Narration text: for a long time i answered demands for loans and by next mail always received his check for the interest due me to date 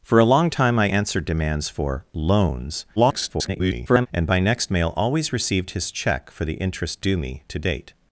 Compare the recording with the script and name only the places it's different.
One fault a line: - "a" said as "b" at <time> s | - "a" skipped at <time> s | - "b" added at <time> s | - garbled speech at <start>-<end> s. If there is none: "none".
- garbled speech at 3.0-4.1 s